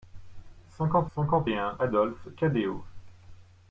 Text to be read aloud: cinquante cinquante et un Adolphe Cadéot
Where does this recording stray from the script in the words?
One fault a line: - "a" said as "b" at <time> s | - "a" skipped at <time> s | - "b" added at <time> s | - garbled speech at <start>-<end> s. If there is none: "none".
none